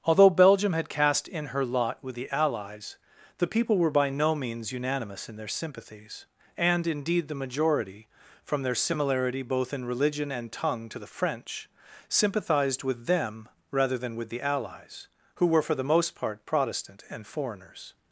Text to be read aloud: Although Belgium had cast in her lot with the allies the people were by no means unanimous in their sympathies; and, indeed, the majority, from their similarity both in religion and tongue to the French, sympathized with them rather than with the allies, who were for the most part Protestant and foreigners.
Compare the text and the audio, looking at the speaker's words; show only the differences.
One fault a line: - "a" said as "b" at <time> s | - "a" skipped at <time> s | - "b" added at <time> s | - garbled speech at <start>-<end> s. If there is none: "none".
none